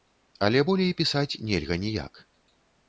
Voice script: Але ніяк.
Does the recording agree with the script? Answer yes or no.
no